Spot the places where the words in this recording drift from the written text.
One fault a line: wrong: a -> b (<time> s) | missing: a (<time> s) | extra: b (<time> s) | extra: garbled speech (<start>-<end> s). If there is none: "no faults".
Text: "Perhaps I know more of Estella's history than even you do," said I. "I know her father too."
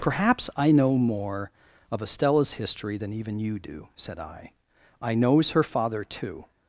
wrong: know -> knows (5.1 s)